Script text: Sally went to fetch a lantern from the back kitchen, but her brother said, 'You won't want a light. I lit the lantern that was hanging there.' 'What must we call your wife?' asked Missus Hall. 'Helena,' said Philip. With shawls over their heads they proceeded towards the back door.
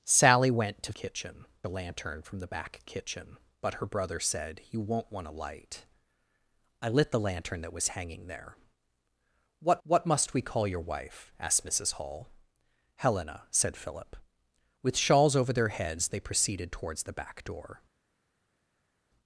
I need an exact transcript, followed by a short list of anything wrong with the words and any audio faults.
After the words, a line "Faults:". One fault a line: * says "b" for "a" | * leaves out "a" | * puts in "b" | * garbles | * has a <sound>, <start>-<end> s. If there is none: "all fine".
Sally went to kitchen a lantern from the back kitchen, but her brother said, 'You won't want a light. I lit the lantern that was hanging there.' 'What what must we call your wife?' asked Missus Hall. 'Helena,' said Philip. With shawls over their heads they proceeded towards the back door.
Faults:
* says "kitchen" for "fetch"
* puts in "what"